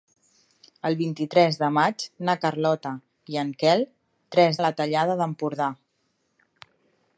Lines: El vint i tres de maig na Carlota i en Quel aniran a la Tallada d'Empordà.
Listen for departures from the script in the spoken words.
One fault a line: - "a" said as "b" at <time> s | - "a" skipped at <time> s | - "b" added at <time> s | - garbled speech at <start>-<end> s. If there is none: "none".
- "aniran" said as "tres" at 4.3 s